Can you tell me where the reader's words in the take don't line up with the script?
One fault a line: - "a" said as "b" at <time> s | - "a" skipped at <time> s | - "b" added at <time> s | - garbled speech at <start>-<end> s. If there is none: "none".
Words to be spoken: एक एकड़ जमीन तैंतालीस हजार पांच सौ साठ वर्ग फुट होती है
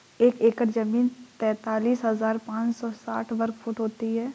none